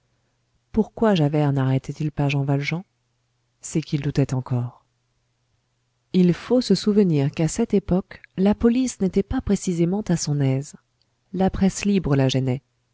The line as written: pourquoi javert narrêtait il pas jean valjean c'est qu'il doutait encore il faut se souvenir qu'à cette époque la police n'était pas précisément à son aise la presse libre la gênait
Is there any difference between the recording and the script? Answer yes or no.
no